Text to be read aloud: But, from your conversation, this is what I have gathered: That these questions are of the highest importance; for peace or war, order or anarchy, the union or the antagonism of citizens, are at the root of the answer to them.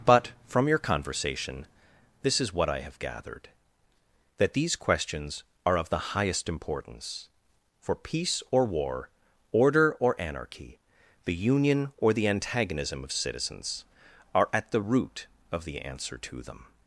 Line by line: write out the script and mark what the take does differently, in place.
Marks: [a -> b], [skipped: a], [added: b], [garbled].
But, from your conversation, this is what I have gathered: That these questions are of the highest importance; for peace or war, order or anarchy, the union or the antagonism of citizens, are at the root of the answer to them.